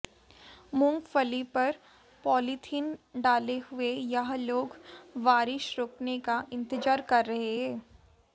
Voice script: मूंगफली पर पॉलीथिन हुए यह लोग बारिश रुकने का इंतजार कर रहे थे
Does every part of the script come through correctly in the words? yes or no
no